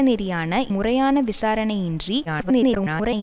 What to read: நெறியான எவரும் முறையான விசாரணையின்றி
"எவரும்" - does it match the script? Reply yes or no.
no